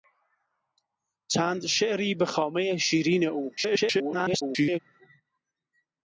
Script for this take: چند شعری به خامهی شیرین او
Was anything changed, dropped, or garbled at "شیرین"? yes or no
no